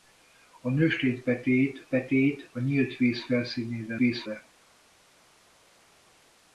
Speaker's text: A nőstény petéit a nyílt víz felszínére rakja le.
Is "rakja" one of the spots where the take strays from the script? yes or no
yes